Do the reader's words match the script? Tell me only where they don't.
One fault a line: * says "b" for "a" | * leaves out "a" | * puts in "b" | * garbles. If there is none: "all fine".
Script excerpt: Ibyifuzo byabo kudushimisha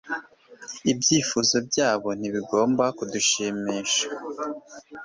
* puts in "ntibigomba"